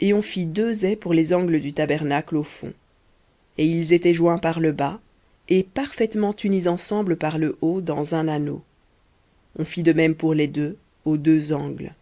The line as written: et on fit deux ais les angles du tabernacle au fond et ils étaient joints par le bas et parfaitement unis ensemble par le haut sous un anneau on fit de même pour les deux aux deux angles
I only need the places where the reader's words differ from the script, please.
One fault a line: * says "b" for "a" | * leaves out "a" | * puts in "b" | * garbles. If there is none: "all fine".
* puts in "pour"
* says "dans" for "sous"